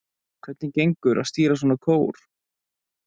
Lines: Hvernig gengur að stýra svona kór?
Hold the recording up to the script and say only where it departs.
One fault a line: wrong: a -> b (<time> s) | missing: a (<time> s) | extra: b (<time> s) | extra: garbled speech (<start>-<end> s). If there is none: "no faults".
no faults